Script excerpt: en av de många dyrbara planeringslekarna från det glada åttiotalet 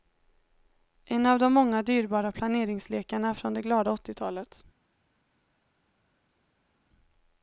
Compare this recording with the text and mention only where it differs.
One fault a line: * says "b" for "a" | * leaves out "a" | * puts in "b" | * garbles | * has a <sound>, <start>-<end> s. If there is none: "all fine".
all fine